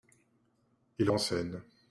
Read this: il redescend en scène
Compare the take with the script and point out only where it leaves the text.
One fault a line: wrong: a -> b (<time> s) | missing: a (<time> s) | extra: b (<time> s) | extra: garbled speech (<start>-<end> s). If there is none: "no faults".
missing: redescend (1.1 s)